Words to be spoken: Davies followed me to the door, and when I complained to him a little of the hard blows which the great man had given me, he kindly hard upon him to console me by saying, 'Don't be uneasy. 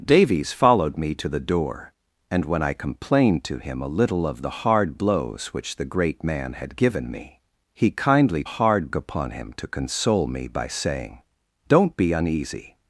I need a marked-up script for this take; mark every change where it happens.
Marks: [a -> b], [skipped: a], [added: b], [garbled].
Davies followed me to the door, and when I complained to him a little of the hard blows which the great man had given me, he kindly hard upon him to console me by saying, 'Don't be uneasy.